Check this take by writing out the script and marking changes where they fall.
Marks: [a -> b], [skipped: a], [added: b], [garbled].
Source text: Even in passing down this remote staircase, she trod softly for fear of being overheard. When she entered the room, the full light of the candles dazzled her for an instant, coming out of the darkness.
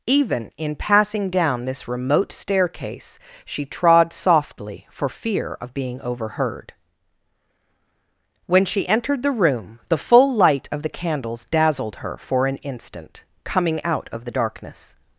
Even in passing down this remote staircase, she trod softly for fear of being overheard. When she entered the room, the full light of the candles dazzled her for an instant, coming out of the darkness.